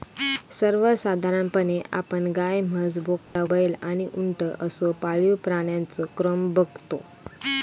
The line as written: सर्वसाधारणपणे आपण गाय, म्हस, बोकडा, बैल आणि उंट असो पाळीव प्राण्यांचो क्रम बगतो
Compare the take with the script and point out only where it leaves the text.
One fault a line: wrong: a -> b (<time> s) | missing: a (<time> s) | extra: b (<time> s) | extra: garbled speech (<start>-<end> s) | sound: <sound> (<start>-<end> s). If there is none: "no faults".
sound: dropout (3.2-3.4 s)